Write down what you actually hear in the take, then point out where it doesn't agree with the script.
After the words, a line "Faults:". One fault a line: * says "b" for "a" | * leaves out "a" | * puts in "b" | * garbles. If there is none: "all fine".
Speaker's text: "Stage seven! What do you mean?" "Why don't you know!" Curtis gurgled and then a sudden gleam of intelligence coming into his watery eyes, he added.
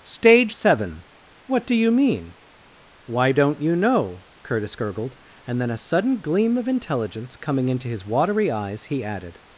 "Stage seven! What do you mean?" "Why don't you know!" Curtis gurgled and then a sudden gleam of intelligence coming into his watery eyes, he added.
Faults:
all fine